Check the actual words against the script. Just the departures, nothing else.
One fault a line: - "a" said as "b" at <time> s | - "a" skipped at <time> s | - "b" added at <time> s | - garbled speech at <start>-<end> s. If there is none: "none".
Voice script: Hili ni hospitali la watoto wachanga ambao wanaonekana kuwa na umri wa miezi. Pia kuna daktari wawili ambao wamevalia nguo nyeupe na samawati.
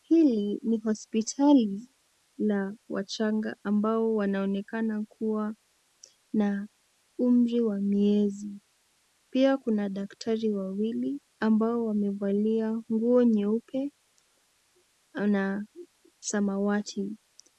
- "watoto" skipped at 2.8 s